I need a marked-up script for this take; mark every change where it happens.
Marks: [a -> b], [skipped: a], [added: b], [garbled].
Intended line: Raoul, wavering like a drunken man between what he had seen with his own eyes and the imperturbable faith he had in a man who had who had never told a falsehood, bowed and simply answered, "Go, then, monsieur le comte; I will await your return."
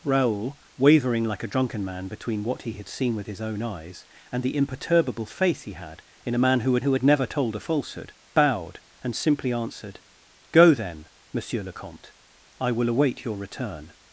Raoul, wavering like a drunken man between what he had seen with his own eyes and the imperturbable faith he had in a man who had who had never told a falsehood, bowed and simply answered, "Go, then, monsieur le comte; I will await your return."